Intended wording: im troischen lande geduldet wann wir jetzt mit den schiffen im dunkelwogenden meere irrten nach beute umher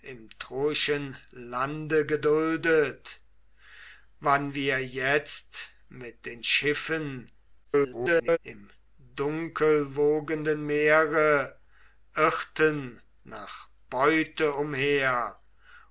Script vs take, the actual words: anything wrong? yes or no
yes